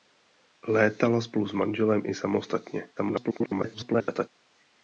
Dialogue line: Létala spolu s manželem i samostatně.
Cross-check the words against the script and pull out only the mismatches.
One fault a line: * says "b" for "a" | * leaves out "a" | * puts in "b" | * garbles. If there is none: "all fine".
* garbles